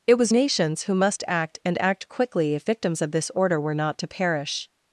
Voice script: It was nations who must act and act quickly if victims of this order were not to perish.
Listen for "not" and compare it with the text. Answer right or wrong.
right